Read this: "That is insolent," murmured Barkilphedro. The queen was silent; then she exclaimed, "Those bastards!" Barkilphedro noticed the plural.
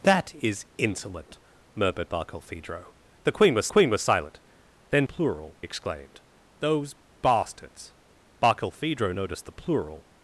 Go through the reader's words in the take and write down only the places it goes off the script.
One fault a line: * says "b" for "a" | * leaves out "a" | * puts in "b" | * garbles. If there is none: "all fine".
* puts in "queen was"
* says "plural" for "she"